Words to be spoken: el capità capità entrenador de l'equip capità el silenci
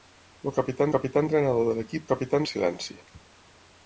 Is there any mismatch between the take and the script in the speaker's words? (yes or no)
no